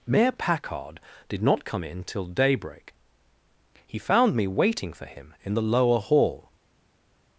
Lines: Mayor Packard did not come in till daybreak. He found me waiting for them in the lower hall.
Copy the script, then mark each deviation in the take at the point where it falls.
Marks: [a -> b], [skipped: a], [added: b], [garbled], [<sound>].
Mayor Packard did not come in till daybreak. He found me waiting for [them -> him] in the lower hall.